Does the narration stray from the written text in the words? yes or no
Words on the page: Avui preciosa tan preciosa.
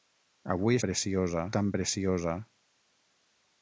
no